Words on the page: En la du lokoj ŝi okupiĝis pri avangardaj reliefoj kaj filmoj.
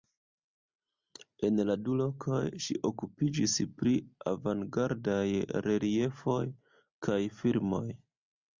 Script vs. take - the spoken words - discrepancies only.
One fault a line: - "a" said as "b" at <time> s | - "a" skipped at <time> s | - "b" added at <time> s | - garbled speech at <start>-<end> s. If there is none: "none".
none